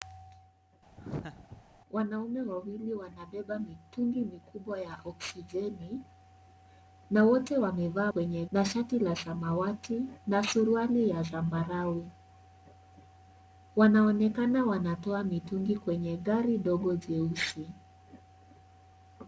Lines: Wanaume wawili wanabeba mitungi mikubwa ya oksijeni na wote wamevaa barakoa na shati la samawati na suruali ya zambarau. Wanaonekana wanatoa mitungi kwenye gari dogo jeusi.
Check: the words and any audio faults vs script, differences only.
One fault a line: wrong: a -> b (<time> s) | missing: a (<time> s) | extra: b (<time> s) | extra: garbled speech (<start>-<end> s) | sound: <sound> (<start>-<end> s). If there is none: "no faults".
sound: laugh (1.0-1.6 s)
wrong: barakoa -> kwenye (8.0 s)